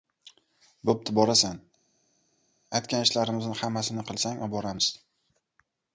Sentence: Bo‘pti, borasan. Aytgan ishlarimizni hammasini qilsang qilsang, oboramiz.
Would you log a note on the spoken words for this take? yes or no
yes